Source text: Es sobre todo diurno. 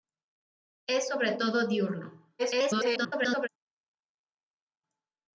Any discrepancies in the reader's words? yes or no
yes